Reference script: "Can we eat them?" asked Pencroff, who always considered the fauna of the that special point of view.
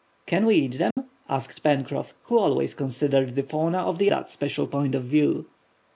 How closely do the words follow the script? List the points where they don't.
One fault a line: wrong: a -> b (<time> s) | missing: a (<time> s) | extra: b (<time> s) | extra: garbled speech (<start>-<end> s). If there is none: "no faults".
no faults